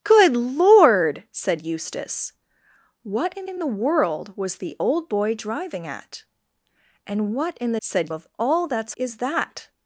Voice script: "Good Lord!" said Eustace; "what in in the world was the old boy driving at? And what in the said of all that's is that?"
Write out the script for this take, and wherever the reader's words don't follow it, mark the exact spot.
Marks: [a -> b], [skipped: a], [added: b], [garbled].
"Good Lord!" said Eustace; "what in in the world was the old boy driving at? And what in the said of all that's is that?"